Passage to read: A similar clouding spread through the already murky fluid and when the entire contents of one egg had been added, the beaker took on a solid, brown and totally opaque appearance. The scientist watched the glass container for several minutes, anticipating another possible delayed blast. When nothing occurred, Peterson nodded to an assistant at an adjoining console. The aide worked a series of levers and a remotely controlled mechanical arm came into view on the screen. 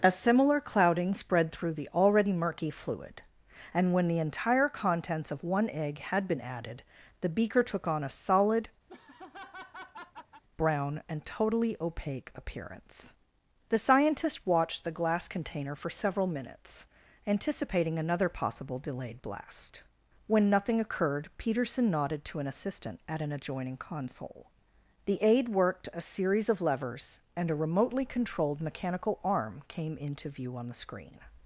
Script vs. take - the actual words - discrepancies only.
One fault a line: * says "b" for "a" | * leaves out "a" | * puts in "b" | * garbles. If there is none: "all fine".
all fine